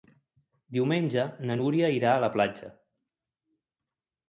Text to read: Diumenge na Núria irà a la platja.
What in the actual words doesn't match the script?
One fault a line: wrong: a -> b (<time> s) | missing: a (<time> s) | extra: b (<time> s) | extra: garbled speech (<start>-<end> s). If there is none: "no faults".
no faults